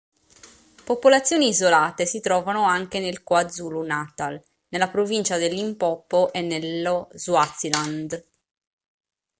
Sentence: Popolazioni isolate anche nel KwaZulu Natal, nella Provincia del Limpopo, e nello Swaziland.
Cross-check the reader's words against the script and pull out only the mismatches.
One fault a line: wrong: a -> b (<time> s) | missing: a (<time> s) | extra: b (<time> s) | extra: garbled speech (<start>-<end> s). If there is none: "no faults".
extra: si trovano (2.1 s)